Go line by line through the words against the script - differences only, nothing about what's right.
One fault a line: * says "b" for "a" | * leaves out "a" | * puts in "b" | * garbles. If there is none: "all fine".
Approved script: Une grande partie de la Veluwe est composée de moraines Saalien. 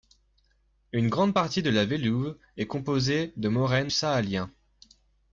all fine